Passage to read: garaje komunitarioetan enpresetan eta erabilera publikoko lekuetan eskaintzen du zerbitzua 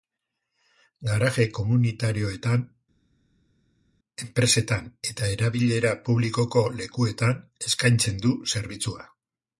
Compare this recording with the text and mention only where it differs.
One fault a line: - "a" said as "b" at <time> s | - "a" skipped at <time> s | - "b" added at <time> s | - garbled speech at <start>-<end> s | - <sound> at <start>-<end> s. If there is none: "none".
none